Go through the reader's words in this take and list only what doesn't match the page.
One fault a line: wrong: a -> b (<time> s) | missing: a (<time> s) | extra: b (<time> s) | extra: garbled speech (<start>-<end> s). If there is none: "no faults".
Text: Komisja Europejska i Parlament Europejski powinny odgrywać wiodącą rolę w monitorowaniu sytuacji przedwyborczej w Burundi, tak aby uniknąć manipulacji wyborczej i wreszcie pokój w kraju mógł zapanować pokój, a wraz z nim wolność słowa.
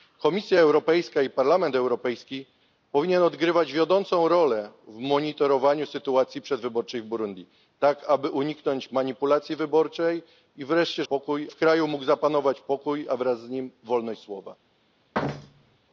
no faults